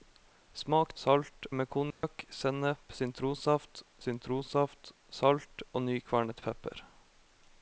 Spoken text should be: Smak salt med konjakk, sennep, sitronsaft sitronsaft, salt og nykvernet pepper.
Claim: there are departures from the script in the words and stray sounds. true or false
true